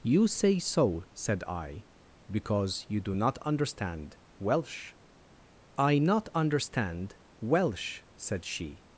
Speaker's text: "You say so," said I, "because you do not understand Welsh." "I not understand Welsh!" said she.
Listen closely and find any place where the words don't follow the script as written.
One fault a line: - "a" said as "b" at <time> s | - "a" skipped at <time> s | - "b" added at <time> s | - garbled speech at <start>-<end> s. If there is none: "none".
none